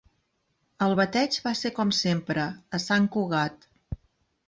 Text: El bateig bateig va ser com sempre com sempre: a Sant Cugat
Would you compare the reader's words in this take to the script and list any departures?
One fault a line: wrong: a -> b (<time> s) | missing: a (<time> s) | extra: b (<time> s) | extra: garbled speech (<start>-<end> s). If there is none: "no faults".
missing: bateig (1.4 s)
missing: com sempre (2.5 s)